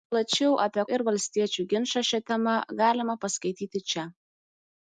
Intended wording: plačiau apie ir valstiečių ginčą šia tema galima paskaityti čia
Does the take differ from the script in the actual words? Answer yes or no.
no